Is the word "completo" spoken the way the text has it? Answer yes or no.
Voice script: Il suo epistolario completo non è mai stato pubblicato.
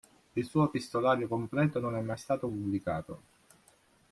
yes